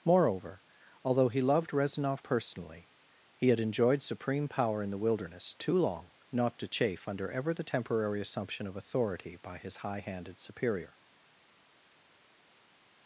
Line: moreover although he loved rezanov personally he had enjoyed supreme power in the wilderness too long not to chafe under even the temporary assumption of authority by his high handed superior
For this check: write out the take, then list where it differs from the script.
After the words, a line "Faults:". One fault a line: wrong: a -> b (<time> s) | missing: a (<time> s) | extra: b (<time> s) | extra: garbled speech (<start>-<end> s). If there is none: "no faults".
moreover although he loved rezanov personally he had enjoyed supreme power in the wilderness too long not to chafe under ever the temporary assumption of authority by his high handed superior
Faults:
wrong: even -> ever (7.3 s)